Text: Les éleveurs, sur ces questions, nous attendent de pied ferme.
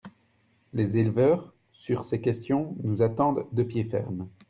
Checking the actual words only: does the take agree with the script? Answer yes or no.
yes